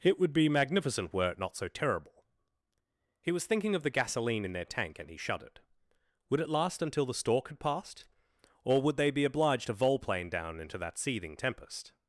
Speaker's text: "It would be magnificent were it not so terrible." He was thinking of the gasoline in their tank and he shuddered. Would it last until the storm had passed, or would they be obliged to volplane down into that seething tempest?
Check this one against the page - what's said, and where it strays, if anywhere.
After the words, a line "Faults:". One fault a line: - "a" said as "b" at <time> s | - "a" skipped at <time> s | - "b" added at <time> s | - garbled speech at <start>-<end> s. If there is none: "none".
"It would be magnificent were it not so terrible." He was thinking of the gasoline in their tank and he shuddered. Would it last until the stork had passed, or would they be obliged to volplane down into that seething tempest?
Faults:
- "storm" said as "stork" at 7.1 s